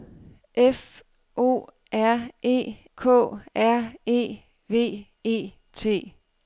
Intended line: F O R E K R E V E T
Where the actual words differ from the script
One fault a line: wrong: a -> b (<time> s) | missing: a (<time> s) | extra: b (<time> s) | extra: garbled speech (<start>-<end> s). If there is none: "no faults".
no faults